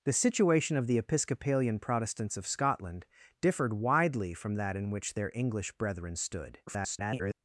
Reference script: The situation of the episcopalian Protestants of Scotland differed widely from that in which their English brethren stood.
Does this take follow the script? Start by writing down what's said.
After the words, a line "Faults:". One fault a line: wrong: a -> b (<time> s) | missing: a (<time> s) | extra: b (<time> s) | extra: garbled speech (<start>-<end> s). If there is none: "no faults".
The situation of the episcopalian Protestants of Scotland differed widely from that in which their English brethren stood. [garbled]
Faults:
extra: garbled speech (6.7-7.3 s)